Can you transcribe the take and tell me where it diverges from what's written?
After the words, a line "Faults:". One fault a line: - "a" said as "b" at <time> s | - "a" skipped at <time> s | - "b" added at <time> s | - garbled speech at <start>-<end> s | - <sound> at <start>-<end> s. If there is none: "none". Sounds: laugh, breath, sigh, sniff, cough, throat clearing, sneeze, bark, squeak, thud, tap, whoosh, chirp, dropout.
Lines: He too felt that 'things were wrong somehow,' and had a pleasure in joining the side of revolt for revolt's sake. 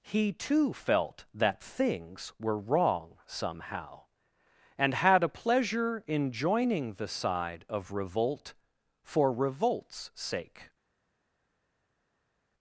He too felt that 'things were wrong somehow,' and had a pleasure in joining the side of revolt for revolt's sake.
Faults:
none